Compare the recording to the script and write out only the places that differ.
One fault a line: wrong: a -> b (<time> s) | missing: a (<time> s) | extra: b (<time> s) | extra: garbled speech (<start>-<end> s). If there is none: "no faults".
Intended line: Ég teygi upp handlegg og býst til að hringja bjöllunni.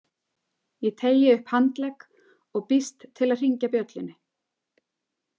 no faults